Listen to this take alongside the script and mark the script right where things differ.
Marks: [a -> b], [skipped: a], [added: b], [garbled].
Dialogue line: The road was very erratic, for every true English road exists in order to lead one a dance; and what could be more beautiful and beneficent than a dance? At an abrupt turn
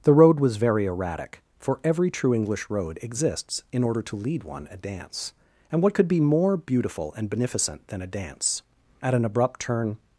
The road was very erratic, for every true English road exists in order to lead one a dance; and what could be more beautiful and beneficent than a dance? At an abrupt turn